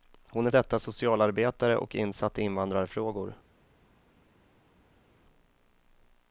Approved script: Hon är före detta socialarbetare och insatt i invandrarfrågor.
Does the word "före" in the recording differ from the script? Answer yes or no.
yes